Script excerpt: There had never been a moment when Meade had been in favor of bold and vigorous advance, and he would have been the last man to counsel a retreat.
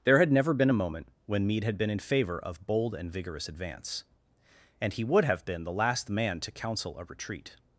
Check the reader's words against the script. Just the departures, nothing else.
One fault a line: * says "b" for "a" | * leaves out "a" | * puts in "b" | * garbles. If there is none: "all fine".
all fine